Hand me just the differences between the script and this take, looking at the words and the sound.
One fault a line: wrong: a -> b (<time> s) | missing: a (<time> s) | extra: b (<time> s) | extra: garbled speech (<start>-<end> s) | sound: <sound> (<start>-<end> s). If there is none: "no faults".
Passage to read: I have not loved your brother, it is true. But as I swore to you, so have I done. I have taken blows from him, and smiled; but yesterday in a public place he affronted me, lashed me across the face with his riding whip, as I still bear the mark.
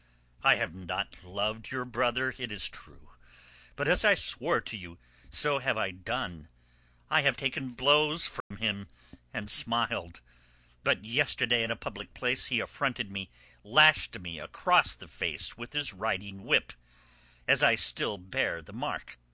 sound: dropout (8.4-8.5 s)